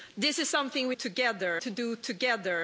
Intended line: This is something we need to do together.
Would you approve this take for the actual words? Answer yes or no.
no